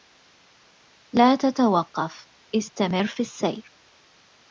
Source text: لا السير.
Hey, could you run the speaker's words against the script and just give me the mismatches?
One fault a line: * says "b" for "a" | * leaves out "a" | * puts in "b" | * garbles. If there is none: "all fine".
* puts in "تتوقف استمر في"